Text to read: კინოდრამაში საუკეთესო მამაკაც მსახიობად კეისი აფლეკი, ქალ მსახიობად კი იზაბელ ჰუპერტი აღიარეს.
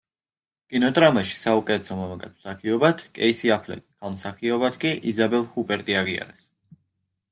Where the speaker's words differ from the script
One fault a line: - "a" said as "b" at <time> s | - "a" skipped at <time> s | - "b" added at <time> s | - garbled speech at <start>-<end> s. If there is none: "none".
none